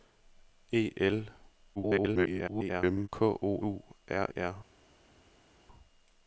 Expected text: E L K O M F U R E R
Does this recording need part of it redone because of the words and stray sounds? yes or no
yes